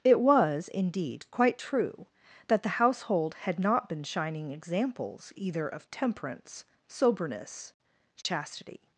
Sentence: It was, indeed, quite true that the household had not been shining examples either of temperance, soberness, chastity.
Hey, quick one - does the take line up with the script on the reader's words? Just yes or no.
yes